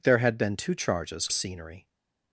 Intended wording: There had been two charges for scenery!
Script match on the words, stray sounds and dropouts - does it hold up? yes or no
no